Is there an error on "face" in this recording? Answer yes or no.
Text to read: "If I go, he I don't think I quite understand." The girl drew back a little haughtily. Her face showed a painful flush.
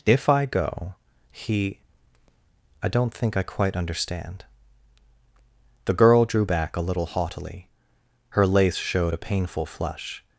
yes